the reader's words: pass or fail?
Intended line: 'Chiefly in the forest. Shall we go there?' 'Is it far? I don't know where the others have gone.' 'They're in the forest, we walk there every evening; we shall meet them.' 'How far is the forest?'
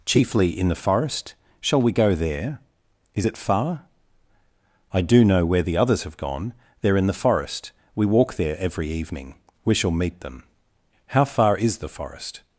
fail